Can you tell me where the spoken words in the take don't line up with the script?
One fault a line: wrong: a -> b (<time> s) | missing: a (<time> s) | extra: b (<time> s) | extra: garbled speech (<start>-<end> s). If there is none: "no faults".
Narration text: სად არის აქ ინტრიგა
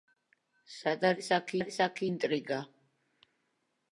extra: არის აქ (1.6 s)